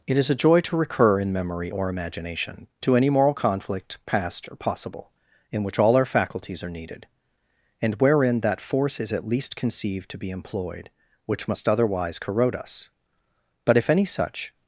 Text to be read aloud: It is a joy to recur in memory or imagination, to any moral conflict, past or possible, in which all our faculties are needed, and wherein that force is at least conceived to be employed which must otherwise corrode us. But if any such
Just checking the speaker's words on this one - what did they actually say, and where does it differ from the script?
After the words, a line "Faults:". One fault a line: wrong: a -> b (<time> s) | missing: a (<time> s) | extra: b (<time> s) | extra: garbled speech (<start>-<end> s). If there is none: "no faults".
It is a joy to recur in memory or imagination, to any moral conflict, past or possible, in which all our faculties are needed, and wherein that force is at least conceived to be employed which must otherwise corrode us. But if any such
Faults:
no faults